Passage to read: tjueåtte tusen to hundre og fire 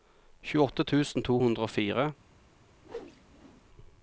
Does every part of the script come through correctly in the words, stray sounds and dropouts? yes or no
no